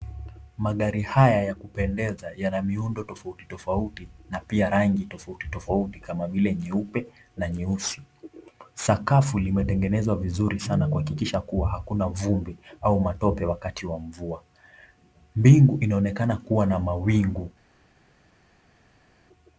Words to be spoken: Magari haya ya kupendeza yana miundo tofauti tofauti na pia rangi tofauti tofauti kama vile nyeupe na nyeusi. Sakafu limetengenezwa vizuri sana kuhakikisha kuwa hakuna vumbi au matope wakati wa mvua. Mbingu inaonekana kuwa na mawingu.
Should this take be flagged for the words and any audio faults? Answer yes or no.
no